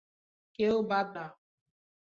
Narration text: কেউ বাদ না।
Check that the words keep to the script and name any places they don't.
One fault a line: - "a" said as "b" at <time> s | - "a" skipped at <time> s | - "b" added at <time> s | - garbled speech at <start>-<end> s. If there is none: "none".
none